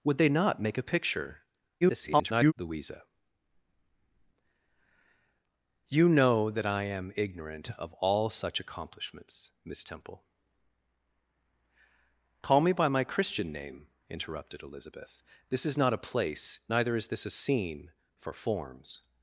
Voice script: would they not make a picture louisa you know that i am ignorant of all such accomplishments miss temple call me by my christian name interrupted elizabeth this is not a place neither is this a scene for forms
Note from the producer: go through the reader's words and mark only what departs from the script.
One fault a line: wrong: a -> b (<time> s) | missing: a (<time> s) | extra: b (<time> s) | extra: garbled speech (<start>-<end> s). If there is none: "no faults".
extra: garbled speech (1.8-2.5 s)